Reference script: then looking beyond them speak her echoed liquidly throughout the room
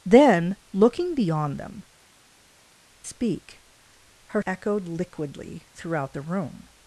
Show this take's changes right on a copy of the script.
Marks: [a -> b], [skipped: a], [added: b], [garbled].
then looking beyond them speak her echoed liquidly throughout the room